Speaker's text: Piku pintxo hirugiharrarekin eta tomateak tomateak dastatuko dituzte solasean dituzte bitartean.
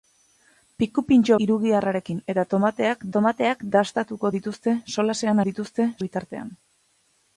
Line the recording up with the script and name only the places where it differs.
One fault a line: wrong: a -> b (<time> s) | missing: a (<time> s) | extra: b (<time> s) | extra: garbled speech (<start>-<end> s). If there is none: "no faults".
no faults